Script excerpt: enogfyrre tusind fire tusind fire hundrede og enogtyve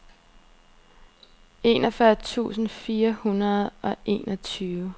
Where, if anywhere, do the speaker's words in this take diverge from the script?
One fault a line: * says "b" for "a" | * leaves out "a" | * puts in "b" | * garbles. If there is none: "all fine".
* leaves out "tusind fire"